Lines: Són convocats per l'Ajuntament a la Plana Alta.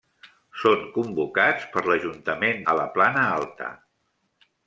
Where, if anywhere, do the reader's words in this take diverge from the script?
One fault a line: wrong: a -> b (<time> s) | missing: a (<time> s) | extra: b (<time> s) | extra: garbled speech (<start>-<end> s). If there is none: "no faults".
no faults